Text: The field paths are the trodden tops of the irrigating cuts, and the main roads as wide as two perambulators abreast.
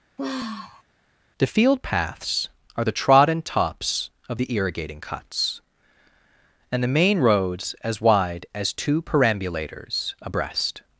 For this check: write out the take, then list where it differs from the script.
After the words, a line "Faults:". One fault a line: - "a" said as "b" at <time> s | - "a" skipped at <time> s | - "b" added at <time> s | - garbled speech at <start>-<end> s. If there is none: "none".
The field paths are the trodden tops of the irrigating cuts, and the main roads as wide as two perambulators abreast.
Faults:
none